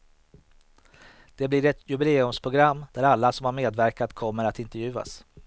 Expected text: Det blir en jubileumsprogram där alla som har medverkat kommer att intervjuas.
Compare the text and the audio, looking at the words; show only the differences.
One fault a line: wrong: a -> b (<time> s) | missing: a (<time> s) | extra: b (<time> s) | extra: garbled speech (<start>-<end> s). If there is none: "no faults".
wrong: en -> ett (1.6 s)